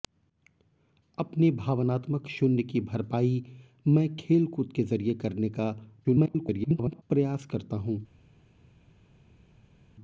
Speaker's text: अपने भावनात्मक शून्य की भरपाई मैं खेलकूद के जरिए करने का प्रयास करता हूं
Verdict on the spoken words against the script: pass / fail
fail